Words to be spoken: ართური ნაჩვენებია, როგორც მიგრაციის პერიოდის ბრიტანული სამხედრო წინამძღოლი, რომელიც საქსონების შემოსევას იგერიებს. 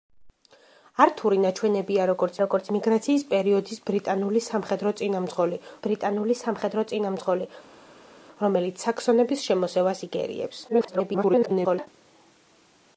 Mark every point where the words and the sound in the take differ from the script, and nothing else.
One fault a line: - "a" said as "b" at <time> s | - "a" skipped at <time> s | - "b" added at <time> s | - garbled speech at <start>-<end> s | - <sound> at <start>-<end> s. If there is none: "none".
- "როგორც" added at 2.4 s
- "ბრიტანული სამხედრო წინამძღოლი" added at 5.9 s
- garbled speech at 10.7-11.9 s